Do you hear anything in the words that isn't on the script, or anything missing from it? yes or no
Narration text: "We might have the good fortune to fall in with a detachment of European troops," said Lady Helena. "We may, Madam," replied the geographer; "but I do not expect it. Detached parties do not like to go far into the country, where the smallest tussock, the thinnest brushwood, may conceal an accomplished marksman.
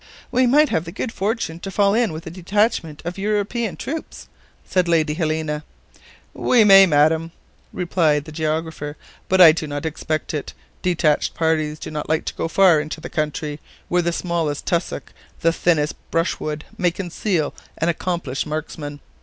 no